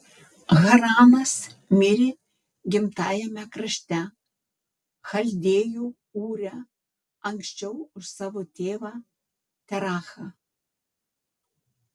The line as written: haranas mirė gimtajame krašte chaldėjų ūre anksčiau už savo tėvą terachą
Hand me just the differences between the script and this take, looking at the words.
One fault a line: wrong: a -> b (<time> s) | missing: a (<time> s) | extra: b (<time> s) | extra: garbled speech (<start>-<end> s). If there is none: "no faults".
no faults